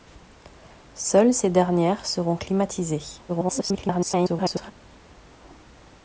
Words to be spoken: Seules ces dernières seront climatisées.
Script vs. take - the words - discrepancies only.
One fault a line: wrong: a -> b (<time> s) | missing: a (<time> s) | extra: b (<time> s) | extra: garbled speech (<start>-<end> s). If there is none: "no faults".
extra: garbled speech (3.3-4.7 s)